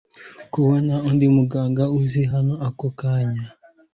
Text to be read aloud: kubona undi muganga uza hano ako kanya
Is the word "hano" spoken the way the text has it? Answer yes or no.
yes